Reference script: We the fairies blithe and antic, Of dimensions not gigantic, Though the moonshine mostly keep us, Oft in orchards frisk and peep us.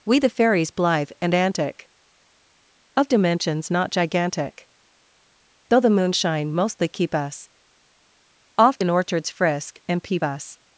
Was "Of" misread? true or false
false